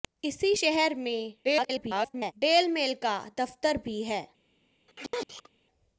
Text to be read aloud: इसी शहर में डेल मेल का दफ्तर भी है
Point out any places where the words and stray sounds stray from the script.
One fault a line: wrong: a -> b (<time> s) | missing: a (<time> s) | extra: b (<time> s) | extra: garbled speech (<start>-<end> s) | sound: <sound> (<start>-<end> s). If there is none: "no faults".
extra: garbled speech (1.4-2.3 s)
sound: sneeze (4.9-5.5 s)